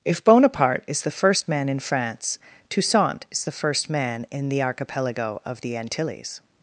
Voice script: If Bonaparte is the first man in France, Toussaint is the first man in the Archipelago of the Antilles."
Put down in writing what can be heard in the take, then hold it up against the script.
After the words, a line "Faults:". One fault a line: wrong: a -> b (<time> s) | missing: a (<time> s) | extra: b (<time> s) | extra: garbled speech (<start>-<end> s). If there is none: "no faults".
If Bonaparte is the first man in France, Toussaint is the first man in the Archipelago of the Antilles."
Faults:
no faults